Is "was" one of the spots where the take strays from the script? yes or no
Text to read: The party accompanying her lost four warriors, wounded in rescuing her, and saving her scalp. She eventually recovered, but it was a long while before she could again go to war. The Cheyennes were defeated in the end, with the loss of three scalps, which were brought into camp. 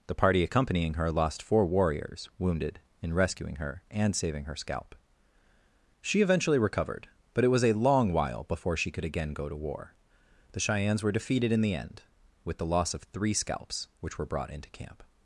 no